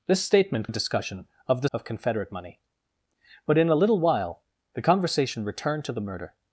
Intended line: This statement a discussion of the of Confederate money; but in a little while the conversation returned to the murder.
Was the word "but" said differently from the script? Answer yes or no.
no